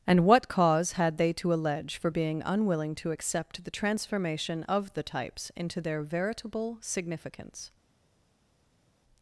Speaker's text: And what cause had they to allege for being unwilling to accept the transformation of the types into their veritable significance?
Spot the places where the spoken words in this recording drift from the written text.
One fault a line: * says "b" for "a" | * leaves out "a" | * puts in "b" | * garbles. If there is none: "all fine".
all fine